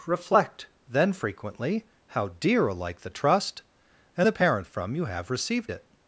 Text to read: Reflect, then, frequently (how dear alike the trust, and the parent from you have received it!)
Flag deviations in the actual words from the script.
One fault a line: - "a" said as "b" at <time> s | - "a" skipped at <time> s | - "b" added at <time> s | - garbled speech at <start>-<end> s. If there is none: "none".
none